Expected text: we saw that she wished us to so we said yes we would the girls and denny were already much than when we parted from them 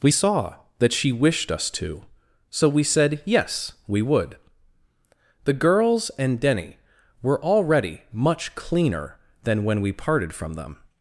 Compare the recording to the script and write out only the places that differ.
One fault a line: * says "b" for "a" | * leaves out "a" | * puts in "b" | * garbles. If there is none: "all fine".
* puts in "cleaner"